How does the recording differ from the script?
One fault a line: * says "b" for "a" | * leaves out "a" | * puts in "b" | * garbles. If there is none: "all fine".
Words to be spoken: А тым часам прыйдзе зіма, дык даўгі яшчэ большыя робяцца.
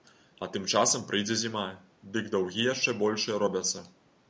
all fine